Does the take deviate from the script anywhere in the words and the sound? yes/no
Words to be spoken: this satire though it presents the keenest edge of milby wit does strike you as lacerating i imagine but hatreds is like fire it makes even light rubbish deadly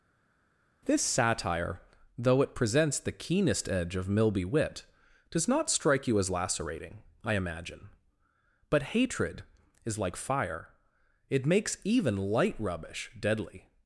yes